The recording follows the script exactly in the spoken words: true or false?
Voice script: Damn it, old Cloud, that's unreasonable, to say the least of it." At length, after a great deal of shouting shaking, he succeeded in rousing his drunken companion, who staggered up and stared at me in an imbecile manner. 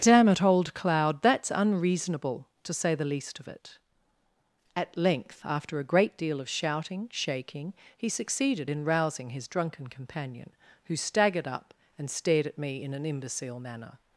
true